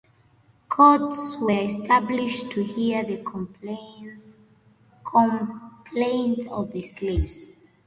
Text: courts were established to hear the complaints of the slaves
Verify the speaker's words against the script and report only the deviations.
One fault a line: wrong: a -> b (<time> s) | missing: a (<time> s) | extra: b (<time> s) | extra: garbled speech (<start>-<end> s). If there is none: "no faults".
no faults